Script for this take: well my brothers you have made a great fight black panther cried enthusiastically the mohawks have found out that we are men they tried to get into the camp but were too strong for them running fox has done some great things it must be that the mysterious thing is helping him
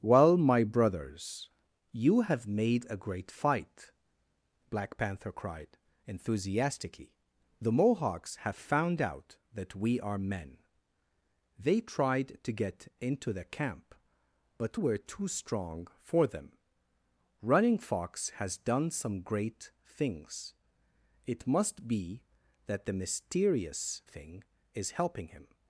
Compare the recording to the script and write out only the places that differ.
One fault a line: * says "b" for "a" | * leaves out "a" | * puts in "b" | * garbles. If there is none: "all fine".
all fine